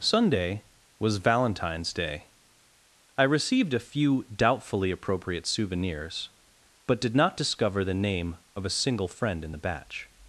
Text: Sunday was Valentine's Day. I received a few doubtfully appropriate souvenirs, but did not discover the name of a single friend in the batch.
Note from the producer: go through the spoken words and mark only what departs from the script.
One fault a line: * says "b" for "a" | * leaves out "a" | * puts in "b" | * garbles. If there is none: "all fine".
all fine